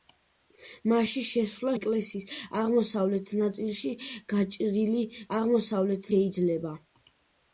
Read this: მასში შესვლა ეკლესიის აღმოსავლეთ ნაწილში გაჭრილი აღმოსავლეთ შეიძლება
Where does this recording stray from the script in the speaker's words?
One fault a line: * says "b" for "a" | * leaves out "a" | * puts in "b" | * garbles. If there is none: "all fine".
all fine